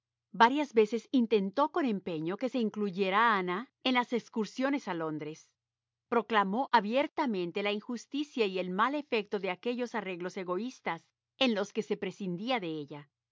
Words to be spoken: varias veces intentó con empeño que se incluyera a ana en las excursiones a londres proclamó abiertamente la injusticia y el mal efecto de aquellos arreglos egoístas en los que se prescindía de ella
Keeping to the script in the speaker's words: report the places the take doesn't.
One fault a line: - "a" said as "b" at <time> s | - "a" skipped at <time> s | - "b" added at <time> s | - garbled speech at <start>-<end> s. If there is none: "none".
none